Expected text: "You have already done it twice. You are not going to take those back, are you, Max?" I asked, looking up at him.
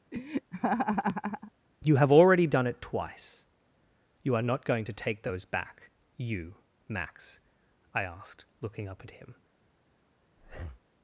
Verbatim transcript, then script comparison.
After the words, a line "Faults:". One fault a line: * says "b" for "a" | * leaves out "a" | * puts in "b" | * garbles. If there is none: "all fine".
"You have already done it twice. You are not going to take those back, you, Max?" I asked, looking up at him.
Faults:
* leaves out "are"